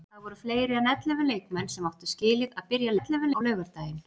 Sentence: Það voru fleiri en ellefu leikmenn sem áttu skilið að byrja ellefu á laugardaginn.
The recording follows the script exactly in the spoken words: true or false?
true